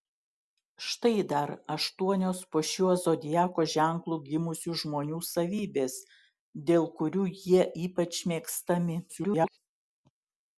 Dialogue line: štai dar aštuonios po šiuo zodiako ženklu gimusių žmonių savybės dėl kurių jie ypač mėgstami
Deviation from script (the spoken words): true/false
true